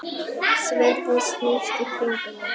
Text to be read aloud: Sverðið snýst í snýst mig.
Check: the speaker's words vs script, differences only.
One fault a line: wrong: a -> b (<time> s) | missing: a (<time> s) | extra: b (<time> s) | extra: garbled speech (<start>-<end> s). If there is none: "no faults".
wrong: snýst -> kringum (1.9 s)